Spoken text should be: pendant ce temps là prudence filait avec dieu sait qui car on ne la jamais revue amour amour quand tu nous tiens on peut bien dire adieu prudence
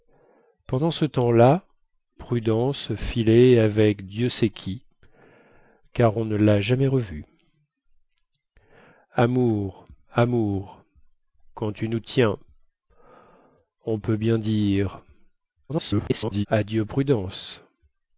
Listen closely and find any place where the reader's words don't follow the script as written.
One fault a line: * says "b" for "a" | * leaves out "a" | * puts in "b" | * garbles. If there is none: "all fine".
* garbles